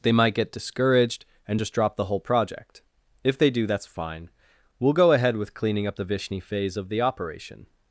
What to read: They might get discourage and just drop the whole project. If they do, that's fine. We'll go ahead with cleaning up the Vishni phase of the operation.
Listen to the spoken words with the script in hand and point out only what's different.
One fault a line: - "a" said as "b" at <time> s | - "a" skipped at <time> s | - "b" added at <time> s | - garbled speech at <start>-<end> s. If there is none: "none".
- "discourage" said as "discouraged" at 0.5 s